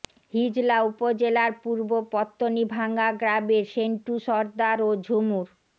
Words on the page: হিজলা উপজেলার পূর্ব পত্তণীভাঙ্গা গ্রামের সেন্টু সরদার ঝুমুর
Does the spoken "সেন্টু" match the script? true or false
true